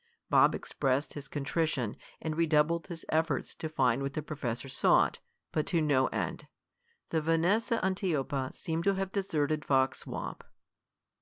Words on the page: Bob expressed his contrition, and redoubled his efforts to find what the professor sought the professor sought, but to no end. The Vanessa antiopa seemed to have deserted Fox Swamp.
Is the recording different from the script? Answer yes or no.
yes